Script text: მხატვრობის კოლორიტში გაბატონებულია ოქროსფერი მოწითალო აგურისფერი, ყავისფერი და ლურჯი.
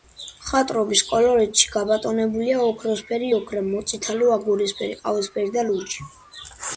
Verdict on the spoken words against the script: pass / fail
fail